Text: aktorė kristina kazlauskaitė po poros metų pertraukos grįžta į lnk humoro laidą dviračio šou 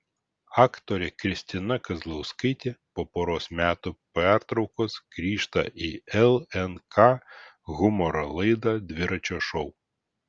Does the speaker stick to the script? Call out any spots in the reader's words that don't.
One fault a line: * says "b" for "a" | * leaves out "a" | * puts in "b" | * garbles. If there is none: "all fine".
all fine